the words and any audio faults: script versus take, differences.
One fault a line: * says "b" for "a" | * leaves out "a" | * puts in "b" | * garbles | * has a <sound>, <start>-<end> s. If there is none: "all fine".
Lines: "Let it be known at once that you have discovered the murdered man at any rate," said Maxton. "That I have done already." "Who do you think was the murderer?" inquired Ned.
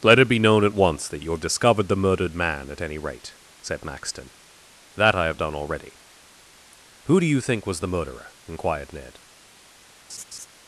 * has a laugh, 10.1-10.5 s